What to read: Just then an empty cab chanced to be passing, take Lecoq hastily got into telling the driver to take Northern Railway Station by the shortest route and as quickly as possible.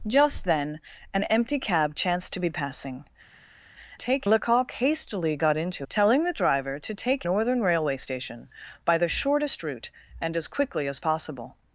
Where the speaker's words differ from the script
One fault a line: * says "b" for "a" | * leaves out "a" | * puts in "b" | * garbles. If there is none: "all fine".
all fine